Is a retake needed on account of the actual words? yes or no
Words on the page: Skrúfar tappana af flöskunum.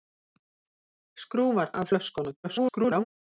yes